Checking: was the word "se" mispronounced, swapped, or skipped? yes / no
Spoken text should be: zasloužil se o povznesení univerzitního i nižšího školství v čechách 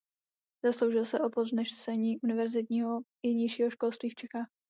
no